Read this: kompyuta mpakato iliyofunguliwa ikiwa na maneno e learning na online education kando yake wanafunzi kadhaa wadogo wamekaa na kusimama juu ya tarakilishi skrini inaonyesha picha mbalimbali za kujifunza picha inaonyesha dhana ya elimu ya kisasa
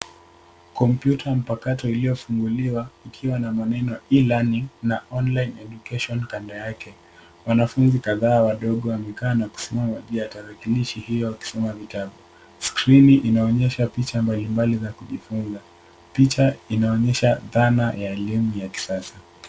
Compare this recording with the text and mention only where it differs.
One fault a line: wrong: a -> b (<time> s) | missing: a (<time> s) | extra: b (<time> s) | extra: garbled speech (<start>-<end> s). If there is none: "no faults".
extra: hiyo wakisoma vitabu (11.0 s)